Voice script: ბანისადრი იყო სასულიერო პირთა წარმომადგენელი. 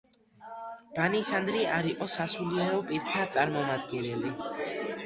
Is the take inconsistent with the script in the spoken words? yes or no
yes